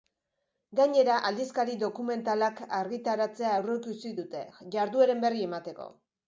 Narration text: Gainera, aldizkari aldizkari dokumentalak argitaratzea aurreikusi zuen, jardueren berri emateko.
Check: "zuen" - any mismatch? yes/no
yes